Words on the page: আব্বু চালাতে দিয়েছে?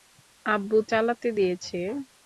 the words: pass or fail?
pass